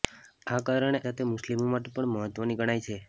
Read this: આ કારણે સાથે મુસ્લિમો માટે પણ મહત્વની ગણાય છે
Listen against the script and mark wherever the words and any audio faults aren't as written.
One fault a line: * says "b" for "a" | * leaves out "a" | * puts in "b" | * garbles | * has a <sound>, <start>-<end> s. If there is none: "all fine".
all fine